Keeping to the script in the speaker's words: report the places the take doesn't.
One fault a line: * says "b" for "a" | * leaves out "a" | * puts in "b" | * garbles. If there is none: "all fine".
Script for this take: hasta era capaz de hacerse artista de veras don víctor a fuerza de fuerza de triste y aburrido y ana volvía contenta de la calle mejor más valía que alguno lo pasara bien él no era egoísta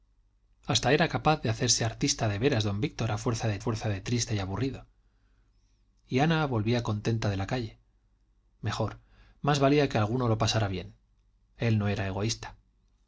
all fine